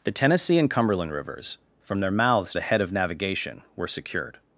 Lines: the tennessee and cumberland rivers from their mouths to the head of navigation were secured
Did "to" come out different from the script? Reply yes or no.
yes